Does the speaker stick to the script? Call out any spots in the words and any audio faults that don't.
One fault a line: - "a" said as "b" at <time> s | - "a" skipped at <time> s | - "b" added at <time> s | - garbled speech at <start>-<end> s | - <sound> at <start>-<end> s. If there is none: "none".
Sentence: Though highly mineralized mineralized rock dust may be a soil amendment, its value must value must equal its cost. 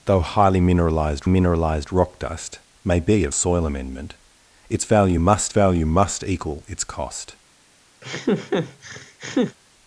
- laugh at 8.0-9.6 s